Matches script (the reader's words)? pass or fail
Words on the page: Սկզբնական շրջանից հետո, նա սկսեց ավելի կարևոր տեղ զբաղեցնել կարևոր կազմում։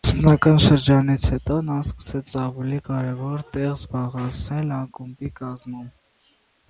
fail